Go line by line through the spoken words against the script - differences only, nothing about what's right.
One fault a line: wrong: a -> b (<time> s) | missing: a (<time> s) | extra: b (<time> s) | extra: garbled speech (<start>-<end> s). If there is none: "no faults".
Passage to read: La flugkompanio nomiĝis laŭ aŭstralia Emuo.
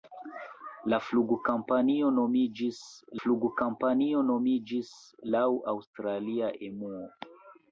extra: flugkompanio nomiĝis (3.2 s)